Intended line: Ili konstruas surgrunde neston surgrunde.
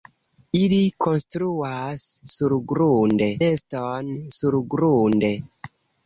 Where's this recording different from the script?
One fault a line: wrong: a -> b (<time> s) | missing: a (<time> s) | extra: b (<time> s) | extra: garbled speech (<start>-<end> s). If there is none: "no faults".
no faults